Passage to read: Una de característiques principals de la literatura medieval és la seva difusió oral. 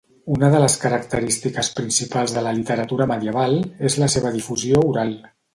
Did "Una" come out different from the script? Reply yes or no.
no